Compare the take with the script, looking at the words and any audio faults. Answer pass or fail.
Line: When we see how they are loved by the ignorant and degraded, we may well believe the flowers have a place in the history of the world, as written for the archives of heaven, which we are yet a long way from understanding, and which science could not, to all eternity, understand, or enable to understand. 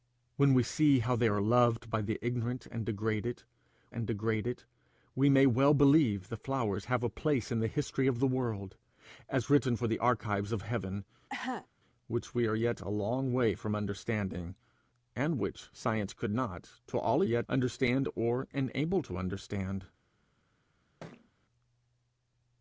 fail